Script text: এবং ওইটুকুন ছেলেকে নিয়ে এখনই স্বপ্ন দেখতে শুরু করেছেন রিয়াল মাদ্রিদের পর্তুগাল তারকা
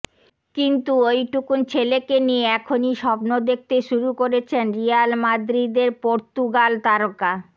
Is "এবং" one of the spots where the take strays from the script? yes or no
yes